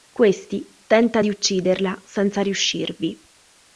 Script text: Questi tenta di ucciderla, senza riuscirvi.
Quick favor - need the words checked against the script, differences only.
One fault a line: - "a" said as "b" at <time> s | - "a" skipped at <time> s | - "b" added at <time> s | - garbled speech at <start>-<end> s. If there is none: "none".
none